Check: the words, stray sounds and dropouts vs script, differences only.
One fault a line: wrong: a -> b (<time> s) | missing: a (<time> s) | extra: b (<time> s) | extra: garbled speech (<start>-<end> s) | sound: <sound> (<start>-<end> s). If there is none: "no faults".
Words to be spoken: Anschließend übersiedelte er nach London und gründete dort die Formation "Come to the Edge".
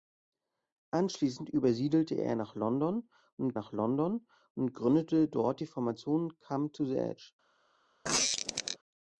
extra: nach London und (3.5 s)
sound: squeak (8.0-8.8 s)